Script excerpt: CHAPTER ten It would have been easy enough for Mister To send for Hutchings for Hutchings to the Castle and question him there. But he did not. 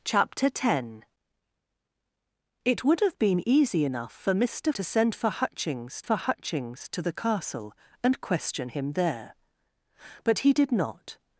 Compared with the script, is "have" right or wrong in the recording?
right